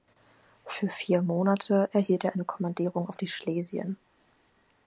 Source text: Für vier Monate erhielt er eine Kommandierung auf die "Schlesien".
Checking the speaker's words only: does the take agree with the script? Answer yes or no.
yes